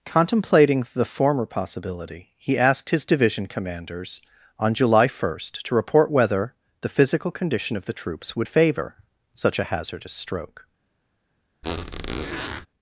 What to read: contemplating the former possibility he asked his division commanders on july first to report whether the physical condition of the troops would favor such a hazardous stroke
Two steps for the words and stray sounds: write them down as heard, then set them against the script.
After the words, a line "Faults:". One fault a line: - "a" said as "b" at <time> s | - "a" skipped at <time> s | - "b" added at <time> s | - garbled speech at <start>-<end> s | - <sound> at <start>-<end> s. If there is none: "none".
contemplating the former possibility he asked his division commanders on july first to report whether the physical condition of the troops would favor such a hazardous stroke
Faults:
- squeak at 11.6-12.7 s